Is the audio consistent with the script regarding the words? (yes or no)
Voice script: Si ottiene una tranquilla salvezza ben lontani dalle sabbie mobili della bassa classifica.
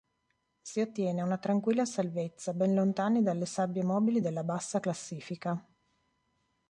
yes